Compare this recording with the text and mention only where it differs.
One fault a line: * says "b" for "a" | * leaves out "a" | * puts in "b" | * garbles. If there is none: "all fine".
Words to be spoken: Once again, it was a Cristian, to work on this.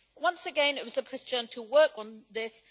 all fine